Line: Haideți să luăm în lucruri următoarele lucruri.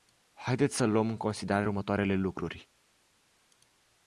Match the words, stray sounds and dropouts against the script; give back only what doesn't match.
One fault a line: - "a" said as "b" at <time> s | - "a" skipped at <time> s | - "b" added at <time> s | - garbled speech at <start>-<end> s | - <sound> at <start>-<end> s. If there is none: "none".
- "lucruri" said as "considerare" at 1.2 s